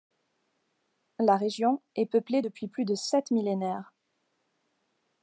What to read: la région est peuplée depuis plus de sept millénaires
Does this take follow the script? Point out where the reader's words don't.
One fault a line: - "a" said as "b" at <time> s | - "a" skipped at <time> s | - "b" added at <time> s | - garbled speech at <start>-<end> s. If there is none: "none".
none